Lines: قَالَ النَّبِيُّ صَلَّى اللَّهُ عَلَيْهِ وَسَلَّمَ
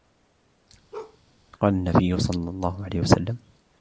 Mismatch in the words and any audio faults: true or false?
true